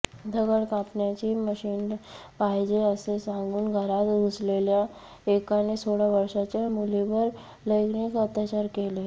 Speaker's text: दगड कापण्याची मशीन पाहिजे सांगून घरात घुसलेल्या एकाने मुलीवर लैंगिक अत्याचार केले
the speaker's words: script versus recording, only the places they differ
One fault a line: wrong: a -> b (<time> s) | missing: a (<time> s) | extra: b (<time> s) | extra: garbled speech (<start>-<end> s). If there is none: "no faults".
extra: असे (2.8 s)
extra: सोळा वर्षाच्या (5.8 s)